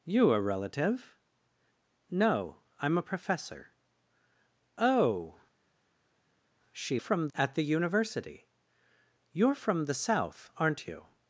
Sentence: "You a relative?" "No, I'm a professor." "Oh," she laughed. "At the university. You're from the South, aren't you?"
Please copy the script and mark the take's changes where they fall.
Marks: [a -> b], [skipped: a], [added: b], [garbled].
"You a relative?" "No, I'm a professor." "Oh," she [laughed. -> from] "At the university. You're from the South, aren't you?"